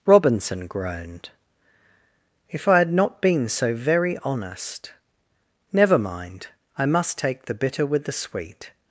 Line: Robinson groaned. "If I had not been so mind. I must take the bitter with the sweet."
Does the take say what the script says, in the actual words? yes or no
no